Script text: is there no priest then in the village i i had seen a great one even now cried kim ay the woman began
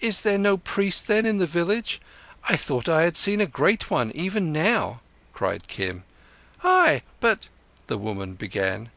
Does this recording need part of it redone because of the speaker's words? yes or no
yes